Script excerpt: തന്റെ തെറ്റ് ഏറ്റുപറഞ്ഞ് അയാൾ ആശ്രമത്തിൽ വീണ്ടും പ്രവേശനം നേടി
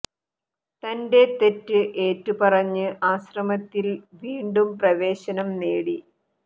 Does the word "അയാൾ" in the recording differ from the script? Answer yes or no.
yes